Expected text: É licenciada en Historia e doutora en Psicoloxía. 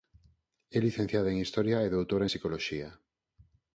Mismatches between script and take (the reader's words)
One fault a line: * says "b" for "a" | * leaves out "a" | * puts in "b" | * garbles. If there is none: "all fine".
all fine